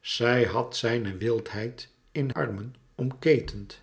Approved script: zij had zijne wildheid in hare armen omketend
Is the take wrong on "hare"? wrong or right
wrong